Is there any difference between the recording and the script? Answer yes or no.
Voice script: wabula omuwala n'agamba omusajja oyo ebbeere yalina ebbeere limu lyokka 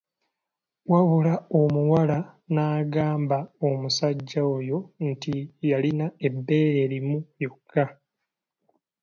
yes